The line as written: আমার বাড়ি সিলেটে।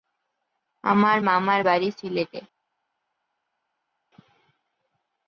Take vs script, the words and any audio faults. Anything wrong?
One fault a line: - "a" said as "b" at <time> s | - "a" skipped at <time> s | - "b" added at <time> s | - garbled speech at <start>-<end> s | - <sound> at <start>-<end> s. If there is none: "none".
- "মামার" added at 1.2 s